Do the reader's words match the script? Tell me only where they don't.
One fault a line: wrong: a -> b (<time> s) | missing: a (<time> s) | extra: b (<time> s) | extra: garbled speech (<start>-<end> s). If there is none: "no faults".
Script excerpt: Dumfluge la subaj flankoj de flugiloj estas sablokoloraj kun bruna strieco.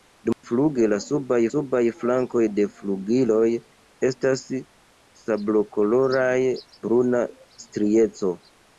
extra: subaj (1.5 s)
missing: kun (6.3 s)